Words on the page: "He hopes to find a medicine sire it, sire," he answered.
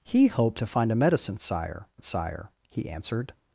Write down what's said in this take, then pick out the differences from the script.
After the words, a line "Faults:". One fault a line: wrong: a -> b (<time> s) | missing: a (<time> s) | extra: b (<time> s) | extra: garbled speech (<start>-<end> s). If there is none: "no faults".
"He hopes to find a medicine sire it, sire," he answered.
Faults:
no faults